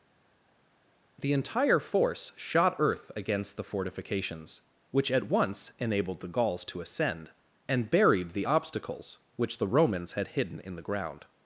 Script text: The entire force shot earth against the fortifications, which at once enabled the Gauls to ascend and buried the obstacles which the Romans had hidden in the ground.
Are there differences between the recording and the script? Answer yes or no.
no